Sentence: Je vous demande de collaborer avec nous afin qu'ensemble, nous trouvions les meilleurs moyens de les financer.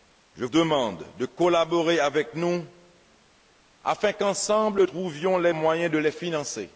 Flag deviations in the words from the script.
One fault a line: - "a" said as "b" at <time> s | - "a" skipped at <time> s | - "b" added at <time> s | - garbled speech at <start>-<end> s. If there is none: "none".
- "vous" skipped at 0.5 s
- "nous" skipped at 4.8 s
- "meilleurs" skipped at 5.5 s